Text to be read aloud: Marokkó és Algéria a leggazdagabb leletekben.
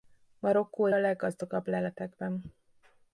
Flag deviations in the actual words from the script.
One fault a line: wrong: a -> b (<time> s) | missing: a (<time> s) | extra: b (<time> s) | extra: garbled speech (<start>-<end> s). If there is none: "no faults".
missing: és Algéria (0.9 s)